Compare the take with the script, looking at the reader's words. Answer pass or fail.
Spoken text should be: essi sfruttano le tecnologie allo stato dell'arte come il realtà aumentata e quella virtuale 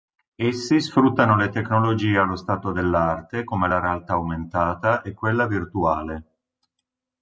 fail